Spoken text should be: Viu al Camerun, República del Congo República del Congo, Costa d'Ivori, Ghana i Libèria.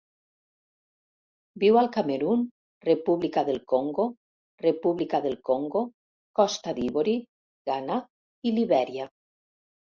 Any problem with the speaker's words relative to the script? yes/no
no